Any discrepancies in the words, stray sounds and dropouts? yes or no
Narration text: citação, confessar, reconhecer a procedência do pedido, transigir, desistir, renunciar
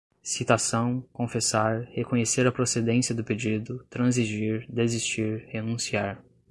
no